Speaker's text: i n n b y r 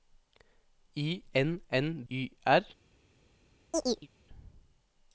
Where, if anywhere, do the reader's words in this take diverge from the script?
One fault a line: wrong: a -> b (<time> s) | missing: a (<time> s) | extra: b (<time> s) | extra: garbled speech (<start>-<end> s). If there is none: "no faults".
missing: b (2.0 s)